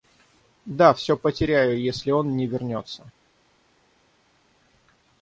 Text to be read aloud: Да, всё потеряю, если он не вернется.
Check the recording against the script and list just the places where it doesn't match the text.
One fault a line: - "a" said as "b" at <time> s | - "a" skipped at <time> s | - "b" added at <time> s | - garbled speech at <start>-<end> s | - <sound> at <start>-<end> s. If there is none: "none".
none